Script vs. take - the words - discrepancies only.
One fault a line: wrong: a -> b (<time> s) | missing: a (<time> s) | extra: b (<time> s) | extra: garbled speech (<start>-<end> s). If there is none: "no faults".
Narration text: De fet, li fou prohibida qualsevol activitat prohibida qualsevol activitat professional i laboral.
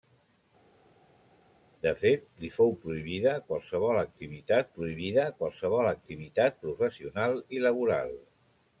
no faults